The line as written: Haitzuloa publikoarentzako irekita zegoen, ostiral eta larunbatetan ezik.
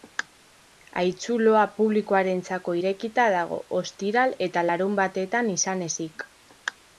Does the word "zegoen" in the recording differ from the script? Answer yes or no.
yes